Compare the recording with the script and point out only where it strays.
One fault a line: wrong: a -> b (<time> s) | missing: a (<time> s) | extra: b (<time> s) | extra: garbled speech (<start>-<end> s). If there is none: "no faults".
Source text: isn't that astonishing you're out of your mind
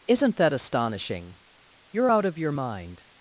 no faults